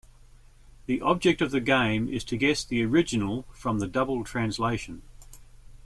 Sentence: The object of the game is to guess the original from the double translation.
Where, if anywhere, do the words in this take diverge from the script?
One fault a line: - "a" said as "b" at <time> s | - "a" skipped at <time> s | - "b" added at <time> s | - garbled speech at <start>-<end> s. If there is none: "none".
none